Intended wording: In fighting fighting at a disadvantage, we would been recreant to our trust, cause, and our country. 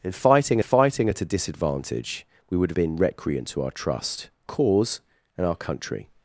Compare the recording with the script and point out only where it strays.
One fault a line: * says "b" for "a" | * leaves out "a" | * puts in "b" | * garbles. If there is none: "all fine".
all fine